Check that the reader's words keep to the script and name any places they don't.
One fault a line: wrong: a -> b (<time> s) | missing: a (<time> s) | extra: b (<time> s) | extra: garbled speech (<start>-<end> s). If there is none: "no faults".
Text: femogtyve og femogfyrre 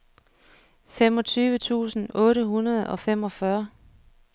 extra: tusind otte hundrede (1.5 s)